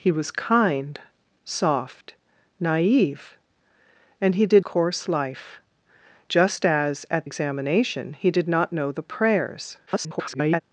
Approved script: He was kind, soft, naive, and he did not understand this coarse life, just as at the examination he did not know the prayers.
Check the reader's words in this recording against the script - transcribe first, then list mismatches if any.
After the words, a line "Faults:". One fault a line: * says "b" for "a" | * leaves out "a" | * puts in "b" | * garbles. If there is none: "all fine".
He was kind, soft, naive, and he did coarse life, just as at examination he did not know the prayers. [garbled]
Faults:
* leaves out "not understand this"
* leaves out "the"
* garbles